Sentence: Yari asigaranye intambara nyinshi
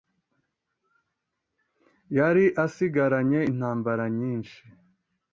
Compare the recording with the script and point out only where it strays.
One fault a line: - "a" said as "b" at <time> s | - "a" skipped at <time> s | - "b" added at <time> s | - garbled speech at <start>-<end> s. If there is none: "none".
none